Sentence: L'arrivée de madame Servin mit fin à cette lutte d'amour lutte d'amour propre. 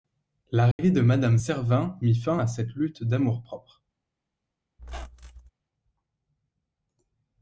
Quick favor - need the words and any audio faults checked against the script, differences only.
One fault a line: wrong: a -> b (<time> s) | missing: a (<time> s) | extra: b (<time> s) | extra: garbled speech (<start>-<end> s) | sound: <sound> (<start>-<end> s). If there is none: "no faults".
sound: dropout (0.7-0.8 s)
missing: lutte d'amour (3.4 s)
sound: squeak (4.8-5.5 s)